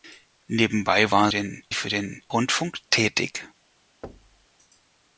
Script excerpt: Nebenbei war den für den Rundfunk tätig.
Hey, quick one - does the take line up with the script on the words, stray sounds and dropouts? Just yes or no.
no